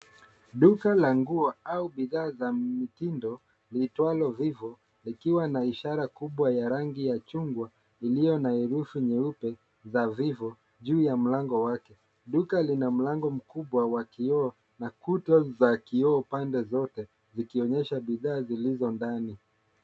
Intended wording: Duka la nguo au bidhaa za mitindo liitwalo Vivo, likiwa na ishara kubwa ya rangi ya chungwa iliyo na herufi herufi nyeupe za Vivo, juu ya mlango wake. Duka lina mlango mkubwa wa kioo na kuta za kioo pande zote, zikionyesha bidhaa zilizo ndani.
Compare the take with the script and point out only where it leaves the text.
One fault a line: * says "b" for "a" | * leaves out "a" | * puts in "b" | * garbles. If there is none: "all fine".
* leaves out "herufi"